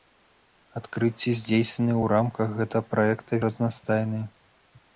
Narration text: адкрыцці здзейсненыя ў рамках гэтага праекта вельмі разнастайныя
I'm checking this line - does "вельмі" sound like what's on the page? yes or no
no